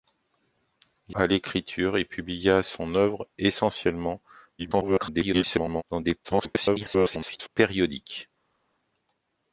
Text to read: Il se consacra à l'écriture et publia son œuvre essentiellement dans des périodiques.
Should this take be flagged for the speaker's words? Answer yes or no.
yes